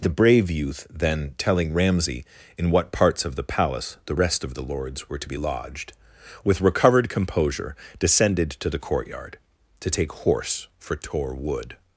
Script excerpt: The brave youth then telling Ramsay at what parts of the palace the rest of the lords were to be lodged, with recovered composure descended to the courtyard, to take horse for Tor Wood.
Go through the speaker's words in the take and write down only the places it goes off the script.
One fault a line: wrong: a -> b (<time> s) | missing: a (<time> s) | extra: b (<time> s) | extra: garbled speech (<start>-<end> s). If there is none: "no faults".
wrong: at -> in (2.6 s)